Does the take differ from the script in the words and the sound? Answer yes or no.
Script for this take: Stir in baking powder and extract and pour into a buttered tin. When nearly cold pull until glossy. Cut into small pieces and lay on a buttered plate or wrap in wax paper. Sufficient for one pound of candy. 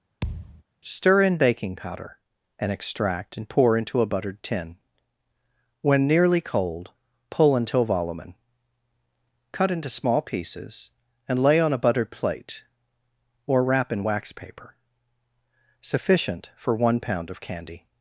yes